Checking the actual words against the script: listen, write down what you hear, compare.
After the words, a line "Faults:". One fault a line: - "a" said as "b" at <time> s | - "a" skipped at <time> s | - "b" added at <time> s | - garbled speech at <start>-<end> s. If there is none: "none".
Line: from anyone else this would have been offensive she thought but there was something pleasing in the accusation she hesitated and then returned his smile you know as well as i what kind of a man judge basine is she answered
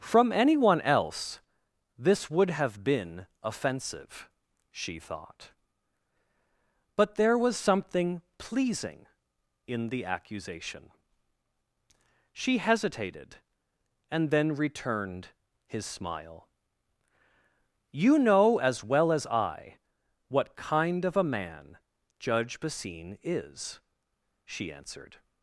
from anyone else this would have been offensive she thought but there was something pleasing in the accusation she hesitated and then returned his smile you know as well as i what kind of a man judge basine is she answered
Faults:
none